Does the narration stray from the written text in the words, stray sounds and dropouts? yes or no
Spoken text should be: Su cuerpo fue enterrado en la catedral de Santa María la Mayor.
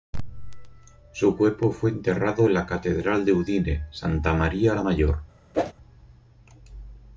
yes